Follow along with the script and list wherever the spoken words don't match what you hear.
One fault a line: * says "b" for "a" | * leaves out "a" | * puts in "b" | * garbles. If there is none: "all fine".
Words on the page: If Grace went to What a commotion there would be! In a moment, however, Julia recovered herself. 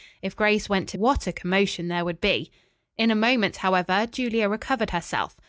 all fine